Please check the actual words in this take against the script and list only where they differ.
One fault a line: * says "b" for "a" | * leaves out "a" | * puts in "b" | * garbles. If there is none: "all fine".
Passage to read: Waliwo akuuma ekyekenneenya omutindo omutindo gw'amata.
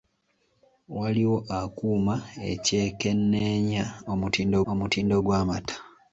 all fine